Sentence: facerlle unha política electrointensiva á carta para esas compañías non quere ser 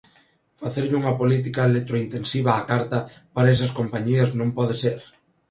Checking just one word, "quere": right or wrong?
wrong